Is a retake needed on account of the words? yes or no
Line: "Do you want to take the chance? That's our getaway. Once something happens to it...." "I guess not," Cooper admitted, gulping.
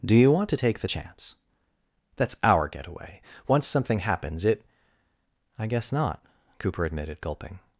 yes